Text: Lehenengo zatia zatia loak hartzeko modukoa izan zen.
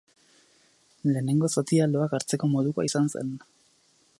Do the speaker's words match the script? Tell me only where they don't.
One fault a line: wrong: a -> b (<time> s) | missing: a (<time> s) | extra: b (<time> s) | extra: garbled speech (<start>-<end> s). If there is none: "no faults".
missing: zatia (1.9 s)